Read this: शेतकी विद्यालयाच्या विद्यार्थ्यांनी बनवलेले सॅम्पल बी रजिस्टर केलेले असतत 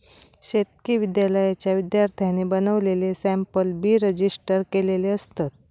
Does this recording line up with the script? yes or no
yes